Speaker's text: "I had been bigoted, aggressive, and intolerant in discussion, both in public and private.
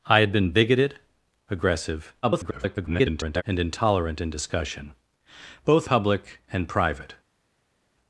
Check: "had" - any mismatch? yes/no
no